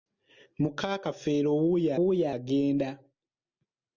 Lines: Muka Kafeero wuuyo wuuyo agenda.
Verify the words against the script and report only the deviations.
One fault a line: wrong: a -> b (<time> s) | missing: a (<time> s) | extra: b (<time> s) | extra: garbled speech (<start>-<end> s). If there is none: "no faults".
no faults